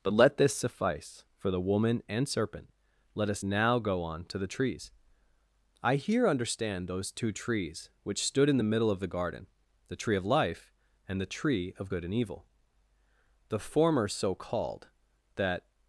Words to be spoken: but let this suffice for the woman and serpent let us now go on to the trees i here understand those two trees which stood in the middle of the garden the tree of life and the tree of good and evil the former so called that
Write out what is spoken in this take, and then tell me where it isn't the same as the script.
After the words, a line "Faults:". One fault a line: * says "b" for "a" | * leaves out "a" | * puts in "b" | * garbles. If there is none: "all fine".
but let this suffice for the woman and serpent let us now go on to the trees i here understand those two trees which stood in the middle of the garden the tree of life and the tree of good and evil the former so called that
Faults:
all fine